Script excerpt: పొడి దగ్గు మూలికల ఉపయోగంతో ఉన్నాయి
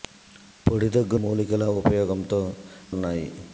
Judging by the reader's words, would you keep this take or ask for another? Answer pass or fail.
pass